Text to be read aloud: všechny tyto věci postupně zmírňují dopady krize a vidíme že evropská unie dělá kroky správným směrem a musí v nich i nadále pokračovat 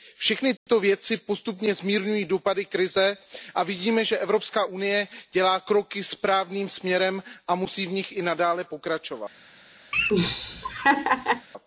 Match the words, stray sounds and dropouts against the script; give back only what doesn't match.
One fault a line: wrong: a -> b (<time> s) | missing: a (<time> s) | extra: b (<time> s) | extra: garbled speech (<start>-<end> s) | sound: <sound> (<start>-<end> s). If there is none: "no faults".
sound: dropout (0.6-0.7 s)
sound: laugh (9.9-11.5 s)